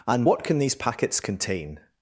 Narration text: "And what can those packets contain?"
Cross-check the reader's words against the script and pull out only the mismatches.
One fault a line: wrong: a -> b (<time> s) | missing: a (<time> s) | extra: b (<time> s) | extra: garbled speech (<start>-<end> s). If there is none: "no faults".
wrong: those -> these (0.6 s)